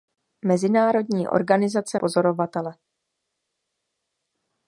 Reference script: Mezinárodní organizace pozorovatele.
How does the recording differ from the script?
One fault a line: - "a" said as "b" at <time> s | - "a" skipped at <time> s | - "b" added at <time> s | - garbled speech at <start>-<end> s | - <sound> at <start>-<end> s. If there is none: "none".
none